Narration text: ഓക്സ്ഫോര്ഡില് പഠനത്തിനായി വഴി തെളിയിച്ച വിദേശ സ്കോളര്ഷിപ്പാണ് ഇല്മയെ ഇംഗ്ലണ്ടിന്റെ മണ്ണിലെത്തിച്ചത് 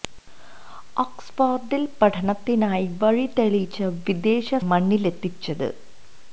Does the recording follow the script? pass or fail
fail